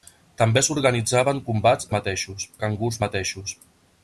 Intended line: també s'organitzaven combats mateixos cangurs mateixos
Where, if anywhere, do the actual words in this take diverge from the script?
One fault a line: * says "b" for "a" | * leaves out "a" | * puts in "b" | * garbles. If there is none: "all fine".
all fine